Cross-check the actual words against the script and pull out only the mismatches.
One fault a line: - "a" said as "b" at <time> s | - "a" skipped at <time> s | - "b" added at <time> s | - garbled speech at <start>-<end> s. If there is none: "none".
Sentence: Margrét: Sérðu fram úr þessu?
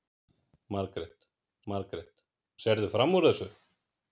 - "margrét" added at 1.7 s